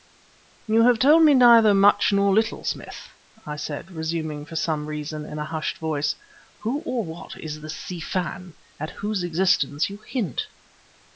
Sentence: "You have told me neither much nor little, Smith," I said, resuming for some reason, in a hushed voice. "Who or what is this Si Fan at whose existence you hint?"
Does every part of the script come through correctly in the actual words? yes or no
yes